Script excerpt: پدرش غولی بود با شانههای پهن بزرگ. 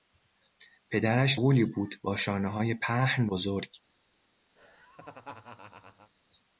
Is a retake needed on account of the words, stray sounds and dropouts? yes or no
yes